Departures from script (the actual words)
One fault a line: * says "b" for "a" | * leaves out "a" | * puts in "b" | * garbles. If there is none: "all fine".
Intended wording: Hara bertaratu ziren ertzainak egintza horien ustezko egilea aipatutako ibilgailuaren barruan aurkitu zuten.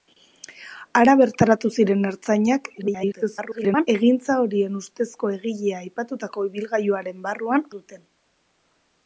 * garbles
* leaves out "aurkitu"